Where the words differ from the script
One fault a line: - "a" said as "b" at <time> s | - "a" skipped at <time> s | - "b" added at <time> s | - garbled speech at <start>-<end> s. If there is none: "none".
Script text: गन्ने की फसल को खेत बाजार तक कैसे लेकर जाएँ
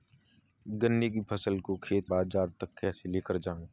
none